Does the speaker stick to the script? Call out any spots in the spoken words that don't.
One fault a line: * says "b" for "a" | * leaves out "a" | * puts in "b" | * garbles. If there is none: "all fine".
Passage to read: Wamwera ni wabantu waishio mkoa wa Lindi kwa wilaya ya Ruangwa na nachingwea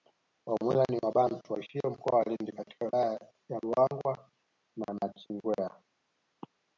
* says "katika" for "kwa"